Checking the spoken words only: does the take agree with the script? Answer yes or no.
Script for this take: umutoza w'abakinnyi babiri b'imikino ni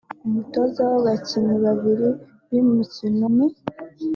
yes